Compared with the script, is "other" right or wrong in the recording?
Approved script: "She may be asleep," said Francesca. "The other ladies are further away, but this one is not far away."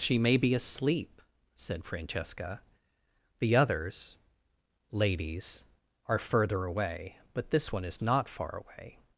wrong